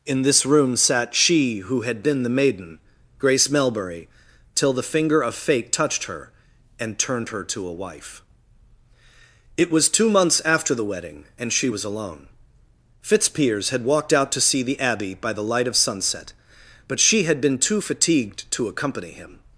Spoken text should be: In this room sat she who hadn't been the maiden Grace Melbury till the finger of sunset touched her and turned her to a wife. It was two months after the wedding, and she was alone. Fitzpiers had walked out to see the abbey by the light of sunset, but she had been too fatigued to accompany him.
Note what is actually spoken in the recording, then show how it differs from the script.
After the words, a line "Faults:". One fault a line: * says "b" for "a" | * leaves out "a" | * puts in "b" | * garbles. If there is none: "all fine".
In this room sat she who had been the maiden Grace Melbury till the finger of fate touched her and turned her to a wife. It was two months after the wedding, and she was alone. Fitzpiers had walked out to see the abbey by the light of sunset, but she had been too fatigued to accompany him.
Faults:
* says "had" for "hadn't"
* says "fate" for "sunset"